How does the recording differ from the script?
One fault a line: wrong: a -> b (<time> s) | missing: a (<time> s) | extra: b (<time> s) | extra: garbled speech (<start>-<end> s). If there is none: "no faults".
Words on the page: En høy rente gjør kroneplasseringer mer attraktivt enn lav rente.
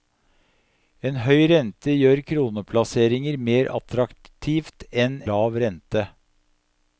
no faults